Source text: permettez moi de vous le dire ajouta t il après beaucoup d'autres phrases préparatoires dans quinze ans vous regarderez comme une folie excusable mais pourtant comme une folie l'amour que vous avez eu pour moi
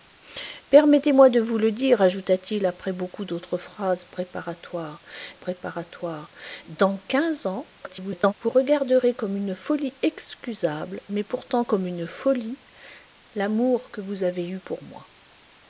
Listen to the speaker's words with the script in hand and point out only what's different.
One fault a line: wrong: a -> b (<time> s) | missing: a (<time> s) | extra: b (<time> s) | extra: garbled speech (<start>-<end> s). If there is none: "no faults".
extra: préparatoires (5.3 s)
extra: garbled speech (7.8-8.3 s)